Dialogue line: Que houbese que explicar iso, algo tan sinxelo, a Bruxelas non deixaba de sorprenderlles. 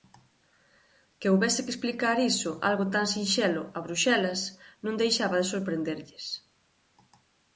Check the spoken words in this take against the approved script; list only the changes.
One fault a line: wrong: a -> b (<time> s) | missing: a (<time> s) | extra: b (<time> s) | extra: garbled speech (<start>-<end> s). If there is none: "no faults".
no faults